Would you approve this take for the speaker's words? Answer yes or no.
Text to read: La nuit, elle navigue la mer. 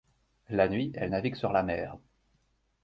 no